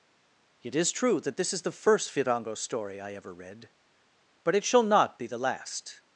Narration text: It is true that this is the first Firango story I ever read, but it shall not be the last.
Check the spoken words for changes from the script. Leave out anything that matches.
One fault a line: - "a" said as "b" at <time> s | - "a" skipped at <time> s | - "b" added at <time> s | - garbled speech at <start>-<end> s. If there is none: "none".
none